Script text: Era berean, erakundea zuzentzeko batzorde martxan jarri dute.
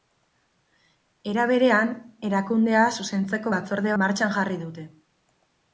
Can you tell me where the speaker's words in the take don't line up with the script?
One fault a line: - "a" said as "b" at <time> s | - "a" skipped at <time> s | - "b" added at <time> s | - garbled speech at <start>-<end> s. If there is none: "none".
none